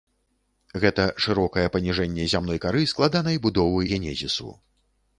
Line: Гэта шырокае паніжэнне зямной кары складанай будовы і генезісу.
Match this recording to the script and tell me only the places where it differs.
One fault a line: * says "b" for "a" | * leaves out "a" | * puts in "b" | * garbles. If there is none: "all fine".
* leaves out "і"